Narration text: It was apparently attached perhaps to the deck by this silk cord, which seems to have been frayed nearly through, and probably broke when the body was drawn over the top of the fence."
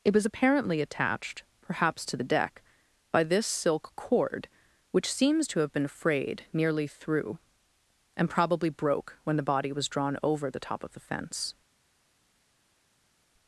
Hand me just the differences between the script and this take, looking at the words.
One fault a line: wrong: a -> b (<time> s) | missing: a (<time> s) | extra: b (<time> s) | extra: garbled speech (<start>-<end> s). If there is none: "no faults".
no faults